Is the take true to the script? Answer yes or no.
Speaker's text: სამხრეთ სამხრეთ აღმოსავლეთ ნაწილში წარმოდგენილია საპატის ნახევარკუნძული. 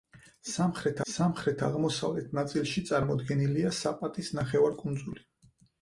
yes